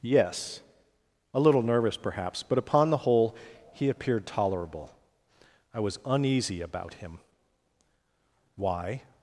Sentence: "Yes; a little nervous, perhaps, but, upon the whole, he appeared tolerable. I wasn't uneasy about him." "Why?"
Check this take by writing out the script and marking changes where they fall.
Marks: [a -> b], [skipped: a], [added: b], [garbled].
"Yes; a little nervous, perhaps, but, upon the whole, he appeared tolerable. I [wasn't -> was] uneasy about him." "Why?"